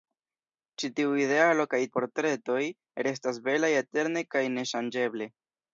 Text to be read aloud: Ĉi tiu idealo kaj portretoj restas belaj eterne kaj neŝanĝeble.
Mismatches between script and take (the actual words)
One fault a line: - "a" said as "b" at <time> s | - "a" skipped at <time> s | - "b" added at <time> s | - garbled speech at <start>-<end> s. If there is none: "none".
none